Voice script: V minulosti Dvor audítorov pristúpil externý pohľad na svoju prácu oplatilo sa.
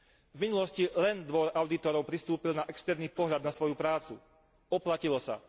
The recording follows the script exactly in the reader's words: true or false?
false